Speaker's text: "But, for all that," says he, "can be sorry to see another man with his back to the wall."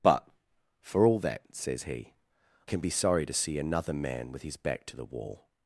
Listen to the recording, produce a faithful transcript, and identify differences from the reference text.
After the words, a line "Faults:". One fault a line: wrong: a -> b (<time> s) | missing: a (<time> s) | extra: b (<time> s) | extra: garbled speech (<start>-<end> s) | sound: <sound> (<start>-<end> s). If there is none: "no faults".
"But, for all that," says he, "can be sorry to see another man with his back to the wall."
Faults:
no faults